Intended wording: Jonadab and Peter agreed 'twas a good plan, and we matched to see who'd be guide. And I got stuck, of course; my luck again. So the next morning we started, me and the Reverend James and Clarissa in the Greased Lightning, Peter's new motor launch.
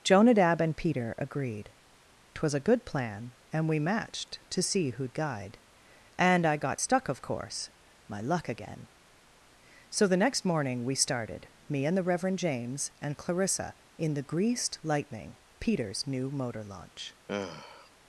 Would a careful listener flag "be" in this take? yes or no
yes